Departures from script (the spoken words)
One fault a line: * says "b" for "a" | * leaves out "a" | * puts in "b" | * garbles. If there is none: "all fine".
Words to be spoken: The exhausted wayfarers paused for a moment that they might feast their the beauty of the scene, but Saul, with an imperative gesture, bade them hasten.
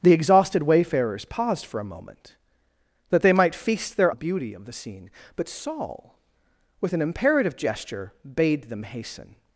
all fine